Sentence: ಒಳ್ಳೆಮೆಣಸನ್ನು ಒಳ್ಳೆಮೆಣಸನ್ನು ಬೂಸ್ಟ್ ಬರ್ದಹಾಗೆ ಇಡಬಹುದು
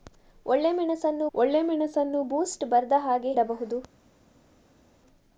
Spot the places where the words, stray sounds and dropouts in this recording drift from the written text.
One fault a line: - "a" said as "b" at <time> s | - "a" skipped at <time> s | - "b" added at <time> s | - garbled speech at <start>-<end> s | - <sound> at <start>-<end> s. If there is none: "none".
none